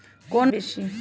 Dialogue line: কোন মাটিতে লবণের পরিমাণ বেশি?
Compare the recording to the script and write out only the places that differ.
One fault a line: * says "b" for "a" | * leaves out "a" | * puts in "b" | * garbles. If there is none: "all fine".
* leaves out "মাটিতে লবণের পরিমাণ"